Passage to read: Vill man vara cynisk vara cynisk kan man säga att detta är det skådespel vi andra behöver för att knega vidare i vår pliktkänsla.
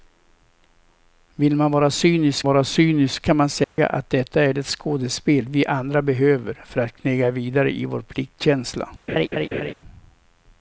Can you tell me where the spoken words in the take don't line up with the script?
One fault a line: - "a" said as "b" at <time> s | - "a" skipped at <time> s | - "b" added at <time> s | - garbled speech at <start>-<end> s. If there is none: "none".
none